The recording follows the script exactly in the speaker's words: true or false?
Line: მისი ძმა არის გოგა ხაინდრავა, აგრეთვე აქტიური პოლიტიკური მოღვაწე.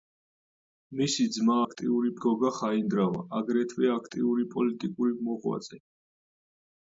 false